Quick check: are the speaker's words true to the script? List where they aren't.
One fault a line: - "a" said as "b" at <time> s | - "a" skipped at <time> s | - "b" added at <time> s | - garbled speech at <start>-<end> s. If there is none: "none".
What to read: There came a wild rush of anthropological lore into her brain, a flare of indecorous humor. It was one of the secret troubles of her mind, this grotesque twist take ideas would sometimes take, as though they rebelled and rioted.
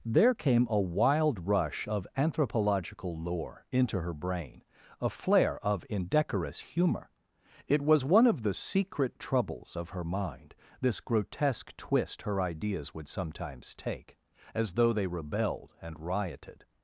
- "take" said as "her" at 12.2 s